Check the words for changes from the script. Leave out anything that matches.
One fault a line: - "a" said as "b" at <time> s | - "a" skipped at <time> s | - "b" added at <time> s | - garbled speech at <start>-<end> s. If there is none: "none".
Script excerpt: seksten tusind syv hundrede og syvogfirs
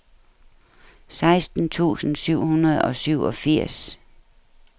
none